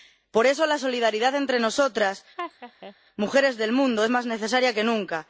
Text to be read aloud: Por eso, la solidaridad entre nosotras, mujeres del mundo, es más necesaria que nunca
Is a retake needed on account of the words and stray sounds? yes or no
yes